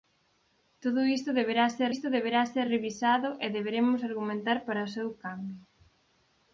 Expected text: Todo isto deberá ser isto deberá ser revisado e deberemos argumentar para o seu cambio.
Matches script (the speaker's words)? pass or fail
pass